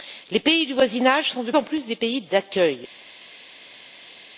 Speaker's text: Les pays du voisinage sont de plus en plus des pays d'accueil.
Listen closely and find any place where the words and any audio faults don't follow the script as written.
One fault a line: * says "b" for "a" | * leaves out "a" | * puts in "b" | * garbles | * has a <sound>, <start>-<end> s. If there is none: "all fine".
* leaves out "plus"